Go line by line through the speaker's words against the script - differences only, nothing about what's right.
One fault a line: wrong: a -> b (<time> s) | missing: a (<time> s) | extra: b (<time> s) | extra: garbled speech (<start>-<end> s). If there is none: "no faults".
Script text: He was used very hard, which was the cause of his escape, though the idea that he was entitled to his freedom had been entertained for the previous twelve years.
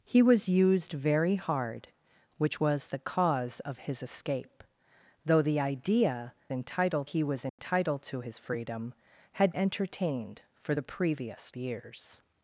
wrong: that -> entitled (6.5 s)
missing: been (9.5 s)
missing: twelve (11.5 s)